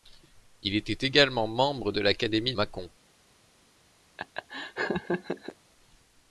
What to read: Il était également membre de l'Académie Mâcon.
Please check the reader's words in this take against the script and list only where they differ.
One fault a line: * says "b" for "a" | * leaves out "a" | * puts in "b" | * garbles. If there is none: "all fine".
all fine